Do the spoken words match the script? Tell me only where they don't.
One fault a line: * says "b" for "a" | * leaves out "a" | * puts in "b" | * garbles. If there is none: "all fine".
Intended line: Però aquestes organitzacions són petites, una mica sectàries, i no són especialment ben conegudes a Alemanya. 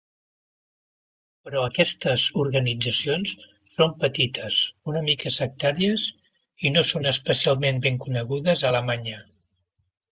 all fine